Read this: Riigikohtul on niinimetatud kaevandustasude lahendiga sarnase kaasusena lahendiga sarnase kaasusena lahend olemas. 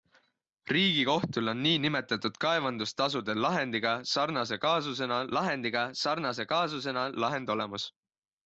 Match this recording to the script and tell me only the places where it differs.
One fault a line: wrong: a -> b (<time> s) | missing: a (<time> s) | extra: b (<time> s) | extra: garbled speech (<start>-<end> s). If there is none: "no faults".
no faults